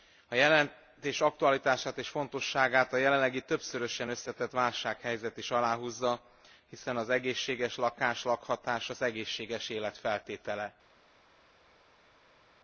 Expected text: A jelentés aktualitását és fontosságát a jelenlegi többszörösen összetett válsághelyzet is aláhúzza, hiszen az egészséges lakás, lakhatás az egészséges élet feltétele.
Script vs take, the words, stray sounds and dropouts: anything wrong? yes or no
no